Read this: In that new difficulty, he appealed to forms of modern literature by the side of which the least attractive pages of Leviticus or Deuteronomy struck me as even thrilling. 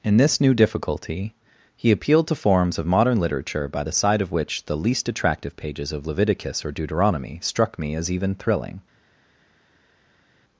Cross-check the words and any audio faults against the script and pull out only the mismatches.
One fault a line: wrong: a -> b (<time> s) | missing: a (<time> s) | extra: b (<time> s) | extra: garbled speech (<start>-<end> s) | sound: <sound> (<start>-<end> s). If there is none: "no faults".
wrong: that -> this (0.2 s)